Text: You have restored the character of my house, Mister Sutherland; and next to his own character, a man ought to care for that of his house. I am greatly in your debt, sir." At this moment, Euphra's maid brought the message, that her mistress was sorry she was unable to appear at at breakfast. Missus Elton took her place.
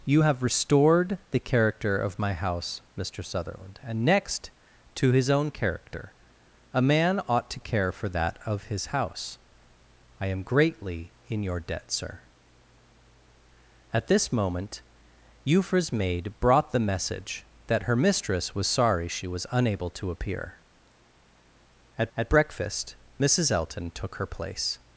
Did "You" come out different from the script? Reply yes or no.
no